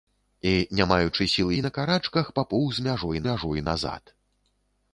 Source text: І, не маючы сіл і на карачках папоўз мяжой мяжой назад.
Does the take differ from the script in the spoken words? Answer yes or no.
no